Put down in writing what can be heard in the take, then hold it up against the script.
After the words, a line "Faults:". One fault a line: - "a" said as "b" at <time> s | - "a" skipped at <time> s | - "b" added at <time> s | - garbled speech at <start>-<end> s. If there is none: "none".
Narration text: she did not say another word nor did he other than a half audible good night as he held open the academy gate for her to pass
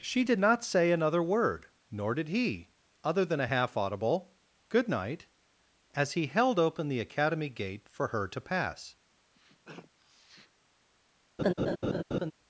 she did not say another word nor did he other than a half audible good night as he held open the academy gate for her to pass
Faults:
none